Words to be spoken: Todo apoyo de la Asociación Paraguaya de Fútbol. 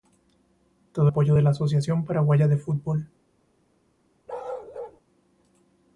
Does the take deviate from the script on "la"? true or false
false